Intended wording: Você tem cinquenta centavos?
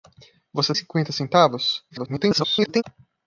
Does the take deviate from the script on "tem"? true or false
true